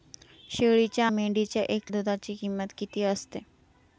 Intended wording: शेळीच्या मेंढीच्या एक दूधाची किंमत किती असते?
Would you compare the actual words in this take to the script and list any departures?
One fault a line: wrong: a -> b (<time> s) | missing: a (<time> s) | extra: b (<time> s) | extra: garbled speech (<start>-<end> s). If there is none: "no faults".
no faults